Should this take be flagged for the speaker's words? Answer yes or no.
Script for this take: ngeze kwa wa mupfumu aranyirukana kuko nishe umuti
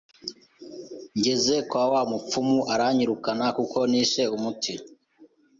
no